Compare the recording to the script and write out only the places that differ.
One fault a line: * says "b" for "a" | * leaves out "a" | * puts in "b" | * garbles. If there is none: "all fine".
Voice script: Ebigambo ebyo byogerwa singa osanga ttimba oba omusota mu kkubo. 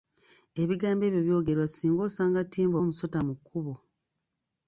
* leaves out "oba"